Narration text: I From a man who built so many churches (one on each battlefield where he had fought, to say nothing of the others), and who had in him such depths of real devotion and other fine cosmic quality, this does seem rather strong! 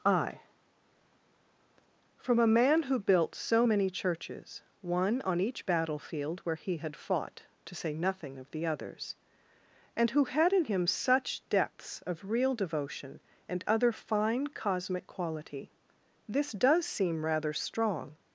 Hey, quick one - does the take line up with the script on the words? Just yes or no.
yes